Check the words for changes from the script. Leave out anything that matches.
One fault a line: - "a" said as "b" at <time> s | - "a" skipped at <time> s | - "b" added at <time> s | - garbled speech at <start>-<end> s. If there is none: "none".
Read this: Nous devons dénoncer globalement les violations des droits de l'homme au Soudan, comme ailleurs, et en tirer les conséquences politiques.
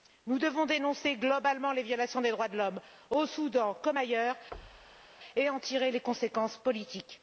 none